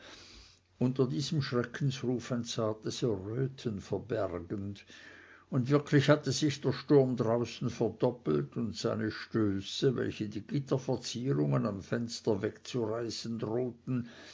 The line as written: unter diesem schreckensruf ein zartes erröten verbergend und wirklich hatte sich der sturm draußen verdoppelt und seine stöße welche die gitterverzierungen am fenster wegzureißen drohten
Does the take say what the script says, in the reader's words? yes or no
yes